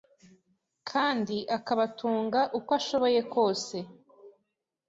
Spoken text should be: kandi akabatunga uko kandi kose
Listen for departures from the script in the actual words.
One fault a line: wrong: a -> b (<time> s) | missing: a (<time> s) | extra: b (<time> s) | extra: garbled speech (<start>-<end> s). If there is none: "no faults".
wrong: kandi -> ashoboye (2.8 s)